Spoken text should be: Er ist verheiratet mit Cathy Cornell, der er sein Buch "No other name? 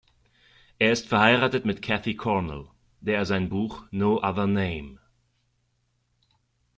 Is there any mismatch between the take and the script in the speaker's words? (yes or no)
no